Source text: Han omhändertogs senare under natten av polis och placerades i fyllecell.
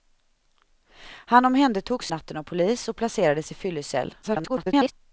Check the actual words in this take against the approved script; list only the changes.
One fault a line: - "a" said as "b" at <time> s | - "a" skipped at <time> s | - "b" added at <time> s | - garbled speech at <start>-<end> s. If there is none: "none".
- "senare under" skipped at 2.1 s
- garbled speech at 4.2-4.9 s